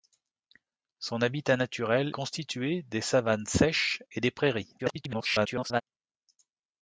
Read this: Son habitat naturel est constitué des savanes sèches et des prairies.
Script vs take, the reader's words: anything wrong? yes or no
yes